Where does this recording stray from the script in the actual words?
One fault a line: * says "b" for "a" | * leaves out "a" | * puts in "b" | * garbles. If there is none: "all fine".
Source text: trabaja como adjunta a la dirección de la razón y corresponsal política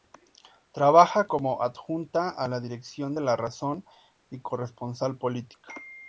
all fine